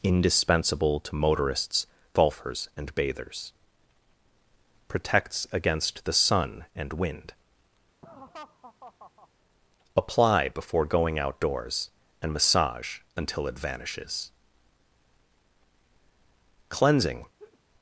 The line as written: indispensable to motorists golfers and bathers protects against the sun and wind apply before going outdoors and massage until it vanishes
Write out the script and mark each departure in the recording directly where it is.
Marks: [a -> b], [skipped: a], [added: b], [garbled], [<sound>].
indispensable to motorists golfers and bathers protects against the sun and wind [laugh] apply before going outdoors and massage until it vanishes [added: cleansing] [laugh]